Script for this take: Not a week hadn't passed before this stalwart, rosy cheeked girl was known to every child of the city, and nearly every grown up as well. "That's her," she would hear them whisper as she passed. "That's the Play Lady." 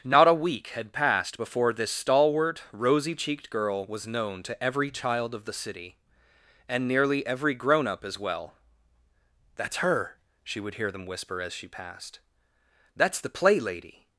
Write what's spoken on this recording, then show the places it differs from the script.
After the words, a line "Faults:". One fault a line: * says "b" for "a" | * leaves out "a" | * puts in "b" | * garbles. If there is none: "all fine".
Not a week had passed before this stalwart, rosy cheeked girl was known to every child of the city, and nearly every grown up as well. "That's her," she would hear them whisper as she passed. "That's the Play Lady."
Faults:
* says "had" for "hadn't"